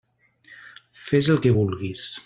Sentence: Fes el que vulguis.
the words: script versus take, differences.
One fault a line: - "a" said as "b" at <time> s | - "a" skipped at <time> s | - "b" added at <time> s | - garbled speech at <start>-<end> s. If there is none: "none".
none